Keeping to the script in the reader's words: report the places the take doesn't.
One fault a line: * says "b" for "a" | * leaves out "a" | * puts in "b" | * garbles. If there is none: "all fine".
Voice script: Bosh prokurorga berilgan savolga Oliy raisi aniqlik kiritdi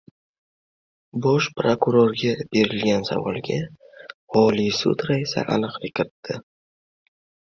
* puts in "sud"